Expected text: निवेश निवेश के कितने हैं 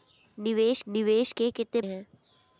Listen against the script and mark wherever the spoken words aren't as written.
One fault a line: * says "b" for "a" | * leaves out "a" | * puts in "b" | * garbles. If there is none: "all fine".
all fine